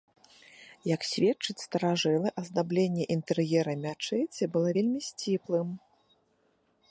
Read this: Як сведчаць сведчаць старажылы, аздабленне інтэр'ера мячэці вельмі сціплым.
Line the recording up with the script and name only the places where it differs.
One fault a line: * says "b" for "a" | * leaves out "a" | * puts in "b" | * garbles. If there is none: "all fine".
* leaves out "сведчаць"
* puts in "было"